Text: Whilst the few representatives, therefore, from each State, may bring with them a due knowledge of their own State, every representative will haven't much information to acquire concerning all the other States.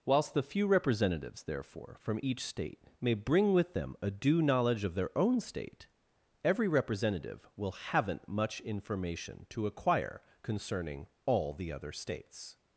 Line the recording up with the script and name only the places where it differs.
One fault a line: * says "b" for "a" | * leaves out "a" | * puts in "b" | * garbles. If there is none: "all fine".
all fine